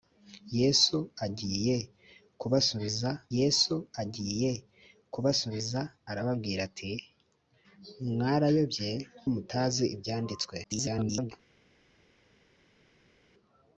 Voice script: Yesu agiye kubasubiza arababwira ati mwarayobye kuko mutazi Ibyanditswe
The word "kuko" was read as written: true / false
false